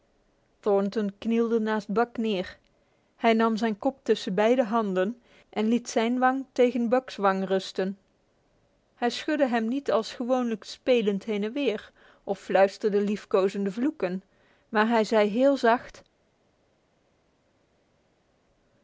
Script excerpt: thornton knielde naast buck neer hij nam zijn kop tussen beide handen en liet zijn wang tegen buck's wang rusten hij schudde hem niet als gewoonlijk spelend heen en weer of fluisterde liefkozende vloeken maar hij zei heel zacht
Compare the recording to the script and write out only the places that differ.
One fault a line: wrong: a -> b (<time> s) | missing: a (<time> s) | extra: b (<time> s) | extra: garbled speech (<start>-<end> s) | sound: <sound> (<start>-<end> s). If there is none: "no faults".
no faults